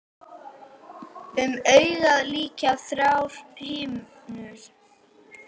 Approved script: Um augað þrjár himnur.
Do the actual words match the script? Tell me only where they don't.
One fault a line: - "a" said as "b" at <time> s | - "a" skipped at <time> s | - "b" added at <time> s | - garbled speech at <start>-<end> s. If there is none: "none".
- "lykja" added at 2.3 s